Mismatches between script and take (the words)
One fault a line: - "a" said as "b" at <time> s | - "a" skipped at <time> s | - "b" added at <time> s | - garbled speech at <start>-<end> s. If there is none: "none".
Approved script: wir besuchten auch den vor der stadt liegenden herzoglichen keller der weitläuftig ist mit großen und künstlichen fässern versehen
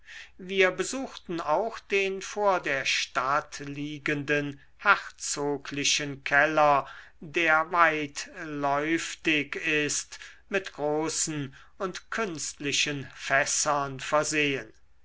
none